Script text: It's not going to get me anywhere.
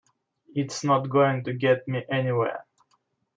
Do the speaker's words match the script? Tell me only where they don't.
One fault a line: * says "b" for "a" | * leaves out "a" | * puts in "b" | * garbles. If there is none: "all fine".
all fine